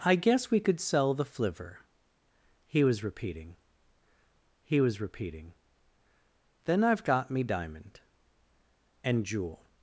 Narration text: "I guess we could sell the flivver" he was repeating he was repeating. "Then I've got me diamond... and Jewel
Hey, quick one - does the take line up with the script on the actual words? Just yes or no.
yes